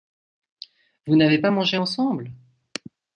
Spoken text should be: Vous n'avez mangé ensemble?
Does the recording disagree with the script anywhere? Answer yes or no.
yes